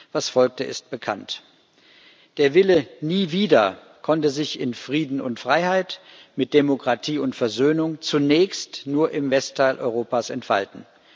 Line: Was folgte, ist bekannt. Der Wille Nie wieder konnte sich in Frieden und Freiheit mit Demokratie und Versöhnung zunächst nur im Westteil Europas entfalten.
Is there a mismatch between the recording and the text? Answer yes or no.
no